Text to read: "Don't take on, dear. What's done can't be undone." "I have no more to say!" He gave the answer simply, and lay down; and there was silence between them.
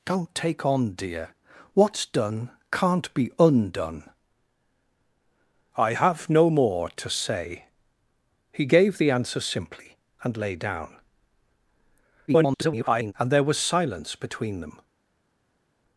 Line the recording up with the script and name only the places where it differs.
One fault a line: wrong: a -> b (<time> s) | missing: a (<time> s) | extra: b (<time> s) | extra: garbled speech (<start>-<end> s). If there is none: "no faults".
extra: garbled speech (12.3-13.1 s)